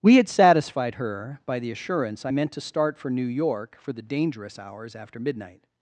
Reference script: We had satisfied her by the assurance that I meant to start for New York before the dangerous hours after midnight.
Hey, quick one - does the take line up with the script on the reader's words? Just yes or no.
no